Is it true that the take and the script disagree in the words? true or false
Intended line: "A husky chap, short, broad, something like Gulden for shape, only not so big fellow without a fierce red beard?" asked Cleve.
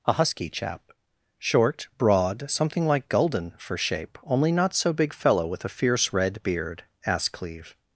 true